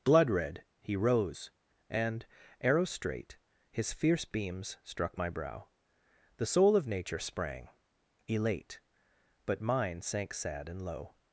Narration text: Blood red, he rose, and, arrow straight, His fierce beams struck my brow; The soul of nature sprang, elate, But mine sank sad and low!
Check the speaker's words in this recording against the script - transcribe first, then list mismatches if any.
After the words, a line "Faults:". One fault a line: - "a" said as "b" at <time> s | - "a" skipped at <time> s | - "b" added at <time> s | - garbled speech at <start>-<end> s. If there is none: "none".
Blood red, he rose, and, arrow straight, His fierce beams struck my brow; The soul of nature sprang, elate, But mine sank sad and low!
Faults:
none